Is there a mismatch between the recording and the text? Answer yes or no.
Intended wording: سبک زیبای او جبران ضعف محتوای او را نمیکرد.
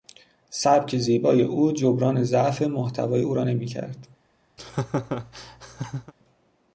no